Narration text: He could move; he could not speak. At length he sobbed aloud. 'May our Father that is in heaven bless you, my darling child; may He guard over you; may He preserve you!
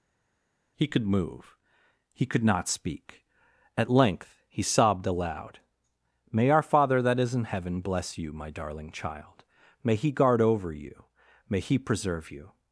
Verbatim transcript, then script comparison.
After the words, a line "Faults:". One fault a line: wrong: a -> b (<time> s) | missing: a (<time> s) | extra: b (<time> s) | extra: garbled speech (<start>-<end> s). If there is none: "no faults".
He could move; he could not speak. At length he sobbed aloud. 'May our Father that is in heaven bless you, my darling child; may He guard over you; may He preserve you!
Faults:
no faults